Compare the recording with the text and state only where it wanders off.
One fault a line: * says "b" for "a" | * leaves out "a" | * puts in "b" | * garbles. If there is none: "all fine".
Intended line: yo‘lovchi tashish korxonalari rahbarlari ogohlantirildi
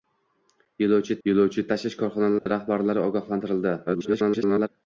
* puts in "yo‘lovchi"
* garbles